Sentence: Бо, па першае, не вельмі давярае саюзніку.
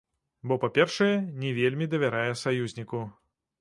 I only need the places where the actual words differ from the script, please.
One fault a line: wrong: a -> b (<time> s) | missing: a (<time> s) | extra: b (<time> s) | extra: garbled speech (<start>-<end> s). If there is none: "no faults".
no faults